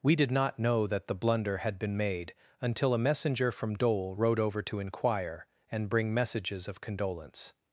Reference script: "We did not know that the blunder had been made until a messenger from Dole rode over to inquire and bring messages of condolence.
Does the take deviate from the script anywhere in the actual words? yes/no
no